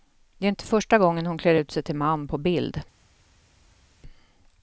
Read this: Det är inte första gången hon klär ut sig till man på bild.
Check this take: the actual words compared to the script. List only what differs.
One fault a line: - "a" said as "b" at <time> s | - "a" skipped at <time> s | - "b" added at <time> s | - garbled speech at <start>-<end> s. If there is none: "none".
none